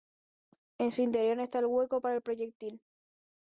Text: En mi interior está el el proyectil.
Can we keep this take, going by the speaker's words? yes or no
no